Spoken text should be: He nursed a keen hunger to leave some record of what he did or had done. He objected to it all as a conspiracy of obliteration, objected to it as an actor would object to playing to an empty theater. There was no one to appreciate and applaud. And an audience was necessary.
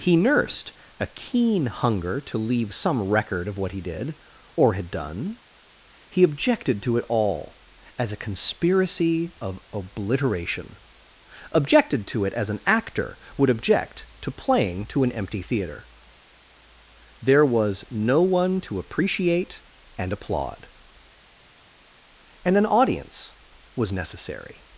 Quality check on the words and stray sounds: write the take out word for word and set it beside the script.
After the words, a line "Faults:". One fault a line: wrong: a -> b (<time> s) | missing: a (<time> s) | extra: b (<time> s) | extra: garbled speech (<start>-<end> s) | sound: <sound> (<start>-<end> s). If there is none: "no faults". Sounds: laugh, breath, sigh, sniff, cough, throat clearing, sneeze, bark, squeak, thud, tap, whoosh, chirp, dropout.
He nursed a keen hunger to leave some record of what he did or had done. He objected to it all as a conspiracy of obliteration, objected to it as an actor would object to playing to an empty theater. There was no one to appreciate and applaud. And an audience was necessary.
Faults:
no faults